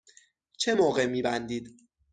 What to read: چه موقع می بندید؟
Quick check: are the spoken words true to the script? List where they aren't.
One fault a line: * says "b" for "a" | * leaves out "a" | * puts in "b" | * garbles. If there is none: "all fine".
all fine